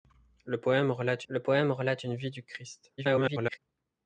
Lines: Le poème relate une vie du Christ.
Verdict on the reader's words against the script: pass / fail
fail